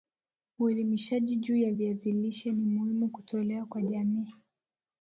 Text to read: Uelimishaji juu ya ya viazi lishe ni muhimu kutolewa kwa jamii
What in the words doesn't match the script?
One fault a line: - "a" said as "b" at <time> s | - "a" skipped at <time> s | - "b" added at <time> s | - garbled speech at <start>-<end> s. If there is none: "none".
- "ya" skipped at 1.7 s